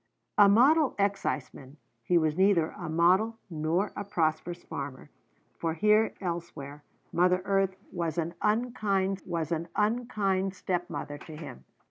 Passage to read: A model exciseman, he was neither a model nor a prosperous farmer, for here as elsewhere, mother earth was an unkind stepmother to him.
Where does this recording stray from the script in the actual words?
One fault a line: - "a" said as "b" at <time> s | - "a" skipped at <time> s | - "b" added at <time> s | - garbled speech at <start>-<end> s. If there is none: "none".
- "as" skipped at 6.1 s
- "was an unkind" added at 9.2 s